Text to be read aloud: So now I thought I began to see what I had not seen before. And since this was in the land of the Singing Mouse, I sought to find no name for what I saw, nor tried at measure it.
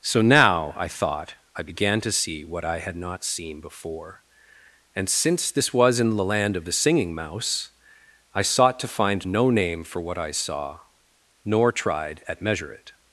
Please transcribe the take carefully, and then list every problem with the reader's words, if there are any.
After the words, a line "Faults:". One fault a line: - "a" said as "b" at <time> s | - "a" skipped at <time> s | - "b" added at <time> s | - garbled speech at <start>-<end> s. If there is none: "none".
So now I thought I began to see what I had not seen before. And since this was in the land of the Singing Mouse, I sought to find no name for what I saw, nor tried at measure it.
Faults:
none